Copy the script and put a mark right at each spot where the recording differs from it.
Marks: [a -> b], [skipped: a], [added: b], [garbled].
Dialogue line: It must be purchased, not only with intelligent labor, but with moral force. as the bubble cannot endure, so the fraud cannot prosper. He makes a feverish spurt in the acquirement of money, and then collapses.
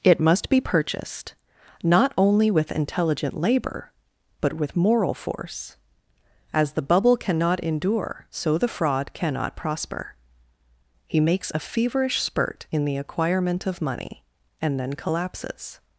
It must be purchased, not only with intelligent labor, but with moral force. as the bubble cannot endure, so the fraud cannot prosper. He makes a feverish spurt in the acquirement of money, and then collapses.